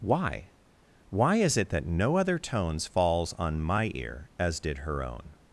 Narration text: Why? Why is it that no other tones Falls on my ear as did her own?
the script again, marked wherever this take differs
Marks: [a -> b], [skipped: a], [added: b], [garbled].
Why? Why is it that no other tones Falls on my ear as did her own?